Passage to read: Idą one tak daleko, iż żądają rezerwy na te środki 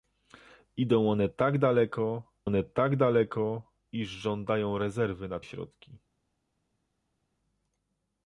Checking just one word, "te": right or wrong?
wrong